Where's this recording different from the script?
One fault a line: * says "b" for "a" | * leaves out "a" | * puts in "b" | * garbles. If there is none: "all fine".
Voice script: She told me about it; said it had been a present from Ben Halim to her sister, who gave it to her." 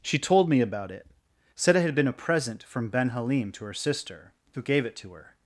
all fine